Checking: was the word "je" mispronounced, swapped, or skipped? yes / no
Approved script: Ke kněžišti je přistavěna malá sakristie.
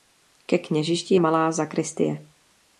yes